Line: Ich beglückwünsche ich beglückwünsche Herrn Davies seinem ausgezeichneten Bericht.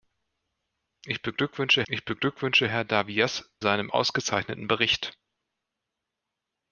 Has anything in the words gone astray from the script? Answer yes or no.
no